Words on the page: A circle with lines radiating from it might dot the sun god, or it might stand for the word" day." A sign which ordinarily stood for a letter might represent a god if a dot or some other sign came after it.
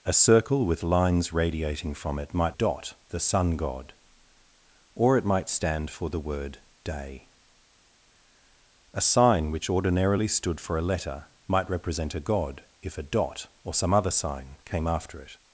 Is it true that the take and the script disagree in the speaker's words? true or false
false